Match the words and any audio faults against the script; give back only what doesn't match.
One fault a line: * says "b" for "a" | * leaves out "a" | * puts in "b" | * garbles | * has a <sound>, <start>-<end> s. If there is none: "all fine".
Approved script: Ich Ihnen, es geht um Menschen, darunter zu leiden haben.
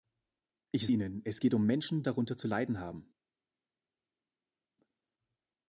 all fine